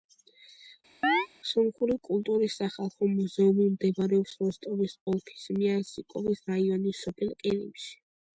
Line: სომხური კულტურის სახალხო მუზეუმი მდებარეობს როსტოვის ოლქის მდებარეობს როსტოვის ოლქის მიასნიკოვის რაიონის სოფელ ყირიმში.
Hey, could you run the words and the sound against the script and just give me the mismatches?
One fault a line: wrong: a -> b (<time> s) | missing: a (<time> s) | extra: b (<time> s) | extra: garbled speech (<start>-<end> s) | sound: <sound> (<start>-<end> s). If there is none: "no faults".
sound: chirp (1.0-1.3 s)
missing: მდებარეობს როსტოვის ოლქის (5.5 s)